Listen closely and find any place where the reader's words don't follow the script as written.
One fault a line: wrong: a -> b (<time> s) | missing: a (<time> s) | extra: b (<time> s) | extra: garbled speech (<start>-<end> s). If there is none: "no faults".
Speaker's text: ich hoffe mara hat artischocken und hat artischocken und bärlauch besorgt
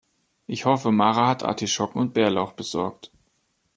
missing: hat artischocken und (2.1 s)